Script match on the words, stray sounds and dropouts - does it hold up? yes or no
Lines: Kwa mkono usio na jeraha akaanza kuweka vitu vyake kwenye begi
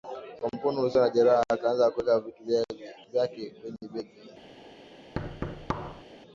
no